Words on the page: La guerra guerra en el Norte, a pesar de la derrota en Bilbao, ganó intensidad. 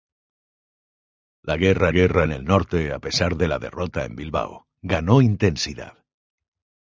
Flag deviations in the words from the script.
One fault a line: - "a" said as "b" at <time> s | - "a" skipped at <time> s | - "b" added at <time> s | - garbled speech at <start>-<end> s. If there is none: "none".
none